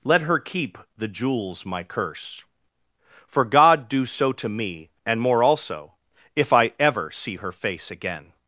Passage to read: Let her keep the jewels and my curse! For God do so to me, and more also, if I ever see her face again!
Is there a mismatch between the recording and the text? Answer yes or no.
yes